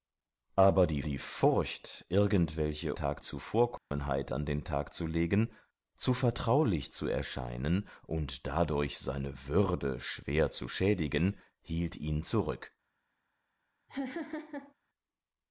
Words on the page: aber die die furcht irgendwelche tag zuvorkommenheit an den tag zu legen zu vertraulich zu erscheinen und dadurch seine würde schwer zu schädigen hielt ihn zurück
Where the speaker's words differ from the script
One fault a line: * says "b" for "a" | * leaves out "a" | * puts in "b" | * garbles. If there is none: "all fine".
all fine